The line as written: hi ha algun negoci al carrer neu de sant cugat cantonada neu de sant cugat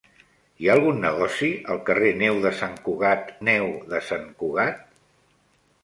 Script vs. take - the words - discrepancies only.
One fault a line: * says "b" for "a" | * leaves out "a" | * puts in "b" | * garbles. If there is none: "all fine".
* leaves out "cantonada"